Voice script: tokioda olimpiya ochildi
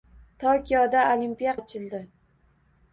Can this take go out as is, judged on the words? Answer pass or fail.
pass